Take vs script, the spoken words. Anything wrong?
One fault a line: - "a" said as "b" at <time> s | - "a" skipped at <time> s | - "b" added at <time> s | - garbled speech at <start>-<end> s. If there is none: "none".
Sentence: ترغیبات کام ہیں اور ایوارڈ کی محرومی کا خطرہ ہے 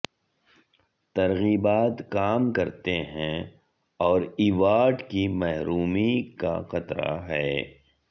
- "کرتے" added at 2.5 s